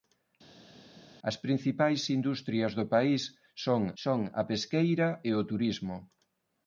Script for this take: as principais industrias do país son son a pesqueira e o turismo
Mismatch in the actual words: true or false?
false